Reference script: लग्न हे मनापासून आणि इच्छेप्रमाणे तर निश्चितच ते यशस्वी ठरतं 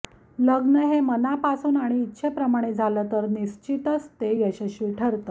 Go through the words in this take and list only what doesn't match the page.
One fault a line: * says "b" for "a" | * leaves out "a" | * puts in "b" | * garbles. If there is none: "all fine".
* puts in "झालं"